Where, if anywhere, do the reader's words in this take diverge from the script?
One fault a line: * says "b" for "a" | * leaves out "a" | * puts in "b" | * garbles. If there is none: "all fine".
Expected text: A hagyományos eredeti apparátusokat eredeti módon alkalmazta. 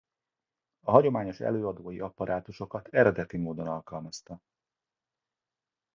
* says "előadói" for "eredeti"